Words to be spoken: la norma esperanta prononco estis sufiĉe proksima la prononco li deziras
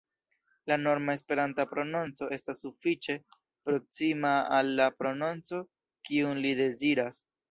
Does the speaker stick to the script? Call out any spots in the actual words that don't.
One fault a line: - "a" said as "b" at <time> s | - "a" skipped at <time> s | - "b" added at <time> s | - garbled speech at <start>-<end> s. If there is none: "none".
- "estis" said as "estas" at 2.4 s
- "al" added at 4.6 s
- "kiun" added at 6.1 s